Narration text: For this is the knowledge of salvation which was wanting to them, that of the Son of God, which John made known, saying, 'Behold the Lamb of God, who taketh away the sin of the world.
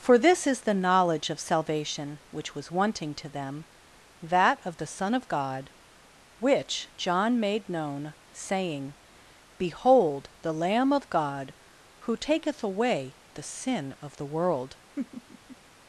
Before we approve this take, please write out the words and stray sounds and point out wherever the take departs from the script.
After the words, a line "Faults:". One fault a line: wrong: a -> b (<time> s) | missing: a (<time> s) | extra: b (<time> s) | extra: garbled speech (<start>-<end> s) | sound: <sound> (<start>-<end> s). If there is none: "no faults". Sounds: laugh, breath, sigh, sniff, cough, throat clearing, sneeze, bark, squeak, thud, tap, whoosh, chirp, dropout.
For this is the knowledge of salvation which was wanting to them, that of the Son of God, which John made known, saying, 'Behold the Lamb of God, who taketh away the sin of the world.
Faults:
sound: laugh (15.0-15.6 s)